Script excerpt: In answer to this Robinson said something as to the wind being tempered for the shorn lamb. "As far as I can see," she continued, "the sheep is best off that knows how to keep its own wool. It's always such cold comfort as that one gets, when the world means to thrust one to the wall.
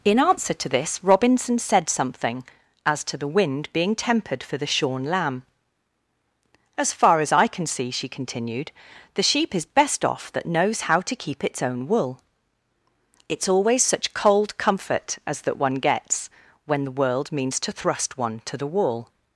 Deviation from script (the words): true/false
false